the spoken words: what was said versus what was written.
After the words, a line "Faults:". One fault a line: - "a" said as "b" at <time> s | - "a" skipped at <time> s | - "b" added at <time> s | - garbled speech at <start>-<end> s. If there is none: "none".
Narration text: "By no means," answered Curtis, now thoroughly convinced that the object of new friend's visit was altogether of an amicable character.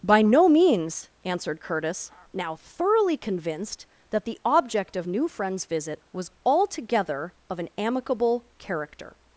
"By no means," answered Curtis, now thoroughly convinced that the object of new friend's visit was altogether of an amicable character.
Faults:
none